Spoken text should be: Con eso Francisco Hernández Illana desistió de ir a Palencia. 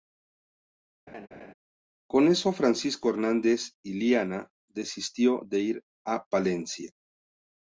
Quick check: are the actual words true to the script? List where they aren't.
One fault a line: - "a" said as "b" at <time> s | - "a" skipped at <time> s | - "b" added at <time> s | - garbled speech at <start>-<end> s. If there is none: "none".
none